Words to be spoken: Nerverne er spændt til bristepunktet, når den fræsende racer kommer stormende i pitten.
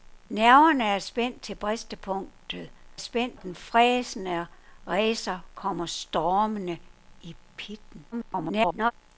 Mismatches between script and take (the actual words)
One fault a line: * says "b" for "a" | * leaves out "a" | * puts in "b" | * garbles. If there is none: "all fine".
* says "spændt" for "når"
* garbles